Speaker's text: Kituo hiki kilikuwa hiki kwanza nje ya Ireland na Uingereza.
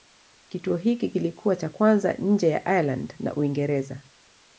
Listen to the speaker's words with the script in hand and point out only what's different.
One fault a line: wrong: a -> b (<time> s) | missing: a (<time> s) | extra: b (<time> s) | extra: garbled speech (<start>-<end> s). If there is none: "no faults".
wrong: hiki -> cha (1.6 s)